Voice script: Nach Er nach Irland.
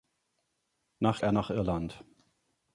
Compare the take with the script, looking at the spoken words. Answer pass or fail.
pass